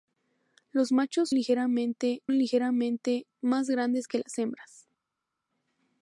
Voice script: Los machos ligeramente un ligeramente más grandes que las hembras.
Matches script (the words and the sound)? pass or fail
pass